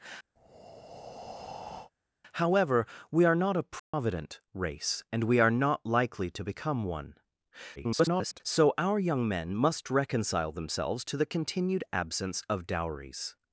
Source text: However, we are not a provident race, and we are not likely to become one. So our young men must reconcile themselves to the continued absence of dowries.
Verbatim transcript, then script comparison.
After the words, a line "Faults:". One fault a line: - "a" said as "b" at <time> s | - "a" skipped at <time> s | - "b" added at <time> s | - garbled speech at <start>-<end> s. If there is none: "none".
However, we are not a provident race, and we are not likely to become one. [garbled] So our young men must reconcile themselves to the continued absence of dowries.
Faults:
- garbled speech at 7.8-8.4 s